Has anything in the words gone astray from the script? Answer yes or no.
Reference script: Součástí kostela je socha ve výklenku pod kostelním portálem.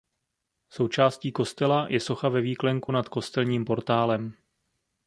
yes